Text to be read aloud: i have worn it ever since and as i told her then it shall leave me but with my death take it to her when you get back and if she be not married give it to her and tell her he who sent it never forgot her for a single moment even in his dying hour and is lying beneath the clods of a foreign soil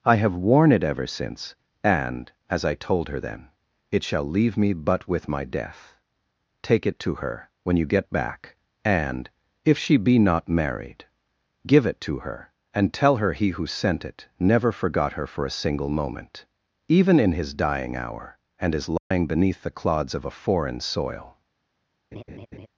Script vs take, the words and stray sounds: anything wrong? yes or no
yes